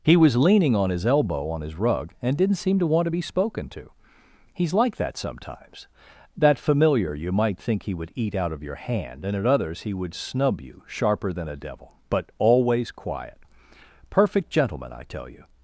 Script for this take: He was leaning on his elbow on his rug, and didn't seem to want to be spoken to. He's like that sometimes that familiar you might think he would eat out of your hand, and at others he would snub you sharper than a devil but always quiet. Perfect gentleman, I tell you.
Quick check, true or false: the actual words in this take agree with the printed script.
true